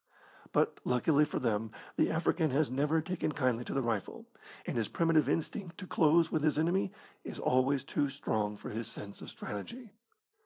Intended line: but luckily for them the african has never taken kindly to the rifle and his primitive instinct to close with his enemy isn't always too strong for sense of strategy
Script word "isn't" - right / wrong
wrong